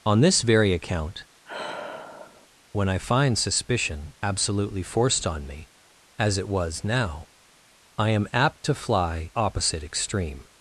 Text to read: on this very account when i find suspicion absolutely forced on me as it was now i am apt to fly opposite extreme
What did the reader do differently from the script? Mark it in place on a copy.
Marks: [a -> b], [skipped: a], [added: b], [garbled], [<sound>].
on this very account [sigh] when i find suspicion absolutely forced on me as it was now i am apt to fly opposite extreme